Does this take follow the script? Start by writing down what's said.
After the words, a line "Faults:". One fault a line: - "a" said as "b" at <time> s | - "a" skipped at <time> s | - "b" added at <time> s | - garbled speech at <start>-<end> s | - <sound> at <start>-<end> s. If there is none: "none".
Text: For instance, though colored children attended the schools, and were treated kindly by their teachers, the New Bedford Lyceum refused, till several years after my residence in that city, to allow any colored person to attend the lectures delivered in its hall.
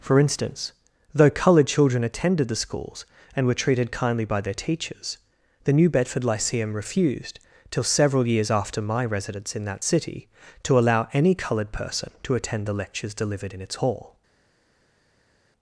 For instance, though colored children attended the schools, and were treated kindly by their teachers, the New Bedford Lyceum refused, till several years after my residence in that city, to allow any colored person to attend the lectures delivered in its hall.
Faults:
none